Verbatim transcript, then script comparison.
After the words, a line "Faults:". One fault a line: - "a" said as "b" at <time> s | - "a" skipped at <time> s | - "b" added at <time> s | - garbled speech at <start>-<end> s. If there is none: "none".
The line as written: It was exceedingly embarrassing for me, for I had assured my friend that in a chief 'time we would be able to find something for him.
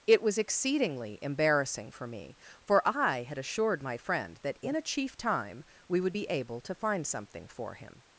It was exceedingly embarrassing for me, for I had assured my friend that in a chief 'time we would be able to find something for him.
Faults:
none